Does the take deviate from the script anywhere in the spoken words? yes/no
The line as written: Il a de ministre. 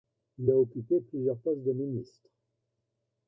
yes